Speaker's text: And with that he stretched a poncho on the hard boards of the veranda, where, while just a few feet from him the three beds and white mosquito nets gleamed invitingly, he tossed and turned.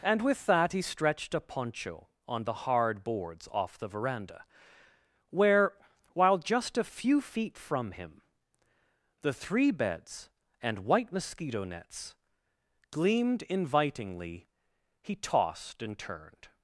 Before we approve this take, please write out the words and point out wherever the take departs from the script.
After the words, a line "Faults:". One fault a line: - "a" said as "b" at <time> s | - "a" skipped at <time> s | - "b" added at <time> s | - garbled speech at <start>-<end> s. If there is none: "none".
And with that he stretched a poncho on the hard boards off the veranda, where, while just a few feet from him the three beds and white mosquito nets gleamed invitingly, he tossed and turned.
Faults:
- "of" said as "off" at 3.5 s